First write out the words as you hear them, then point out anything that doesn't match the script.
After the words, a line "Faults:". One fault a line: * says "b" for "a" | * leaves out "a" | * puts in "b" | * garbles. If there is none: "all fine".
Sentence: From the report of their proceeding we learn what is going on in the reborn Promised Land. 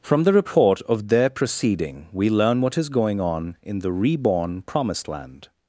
From the report of their proceeding we learn what is going on in the reborn Promised Land.
Faults:
all fine